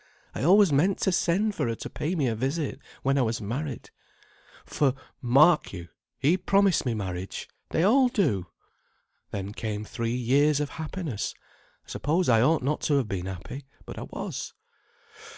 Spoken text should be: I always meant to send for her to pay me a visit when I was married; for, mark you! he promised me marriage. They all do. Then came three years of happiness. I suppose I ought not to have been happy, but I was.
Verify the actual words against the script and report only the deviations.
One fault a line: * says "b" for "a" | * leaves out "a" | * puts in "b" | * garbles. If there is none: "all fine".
all fine